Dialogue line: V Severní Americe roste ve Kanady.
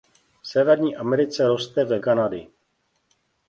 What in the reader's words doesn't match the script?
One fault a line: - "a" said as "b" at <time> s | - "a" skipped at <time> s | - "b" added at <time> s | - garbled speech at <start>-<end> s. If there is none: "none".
none